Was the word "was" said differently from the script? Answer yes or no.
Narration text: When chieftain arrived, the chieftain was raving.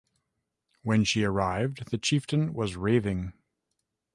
no